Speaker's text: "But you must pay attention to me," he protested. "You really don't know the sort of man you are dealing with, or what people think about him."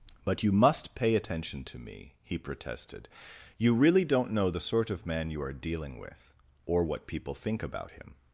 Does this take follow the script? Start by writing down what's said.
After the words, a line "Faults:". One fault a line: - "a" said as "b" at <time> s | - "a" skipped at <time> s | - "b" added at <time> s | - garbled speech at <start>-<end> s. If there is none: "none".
"But you must pay attention to me," he protested. "You really don't know the sort of man you are dealing with, or what people think about him."
Faults:
none